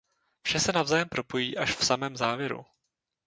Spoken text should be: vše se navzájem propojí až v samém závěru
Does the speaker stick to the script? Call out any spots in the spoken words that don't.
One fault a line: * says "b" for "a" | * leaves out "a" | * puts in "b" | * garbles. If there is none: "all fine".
all fine